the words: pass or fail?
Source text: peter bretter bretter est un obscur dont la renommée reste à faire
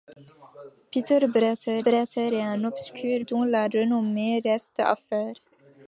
pass